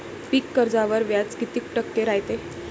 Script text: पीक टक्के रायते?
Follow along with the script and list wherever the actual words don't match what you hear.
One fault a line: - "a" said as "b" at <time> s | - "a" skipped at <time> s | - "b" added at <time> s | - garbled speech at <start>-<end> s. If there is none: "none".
- "कर्जावर व्याज किती" added at 0.6 s